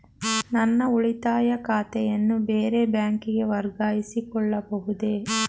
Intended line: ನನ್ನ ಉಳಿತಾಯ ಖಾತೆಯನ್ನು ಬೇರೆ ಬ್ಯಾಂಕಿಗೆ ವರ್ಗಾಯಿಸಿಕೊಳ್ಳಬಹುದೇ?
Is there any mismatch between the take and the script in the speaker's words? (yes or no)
no